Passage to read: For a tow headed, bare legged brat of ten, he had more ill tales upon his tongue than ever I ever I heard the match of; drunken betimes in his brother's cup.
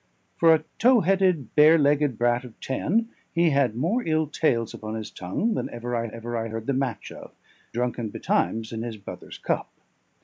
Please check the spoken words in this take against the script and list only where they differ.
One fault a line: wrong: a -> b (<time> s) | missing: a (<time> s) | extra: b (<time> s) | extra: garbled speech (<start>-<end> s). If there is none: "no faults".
no faults